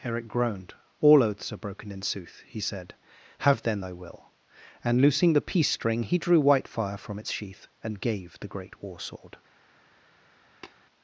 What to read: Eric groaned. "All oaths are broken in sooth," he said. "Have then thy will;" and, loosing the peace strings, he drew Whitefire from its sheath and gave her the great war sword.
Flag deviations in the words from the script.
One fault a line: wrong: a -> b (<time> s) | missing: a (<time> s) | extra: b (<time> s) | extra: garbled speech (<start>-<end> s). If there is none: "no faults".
wrong: strings -> string (5.7 s)
missing: her (8.4 s)